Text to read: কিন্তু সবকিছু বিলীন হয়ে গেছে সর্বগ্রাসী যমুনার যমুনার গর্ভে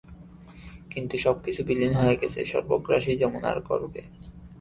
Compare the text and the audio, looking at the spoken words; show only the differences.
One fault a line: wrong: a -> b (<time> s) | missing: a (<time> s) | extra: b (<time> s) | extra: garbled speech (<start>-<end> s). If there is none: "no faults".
missing: যমুনার (3.6 s)